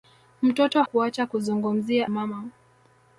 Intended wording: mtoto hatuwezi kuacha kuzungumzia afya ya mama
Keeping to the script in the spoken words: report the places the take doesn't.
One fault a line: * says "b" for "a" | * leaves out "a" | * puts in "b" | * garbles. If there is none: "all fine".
* leaves out "hatuwezi"
* leaves out "afya ya"